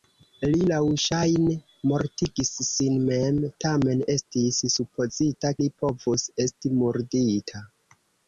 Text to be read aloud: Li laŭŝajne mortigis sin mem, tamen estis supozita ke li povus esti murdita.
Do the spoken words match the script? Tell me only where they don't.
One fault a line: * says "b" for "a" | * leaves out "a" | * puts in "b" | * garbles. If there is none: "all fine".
* leaves out "ke"